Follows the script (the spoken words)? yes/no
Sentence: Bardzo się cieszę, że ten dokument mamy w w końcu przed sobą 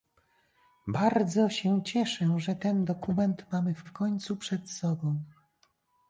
yes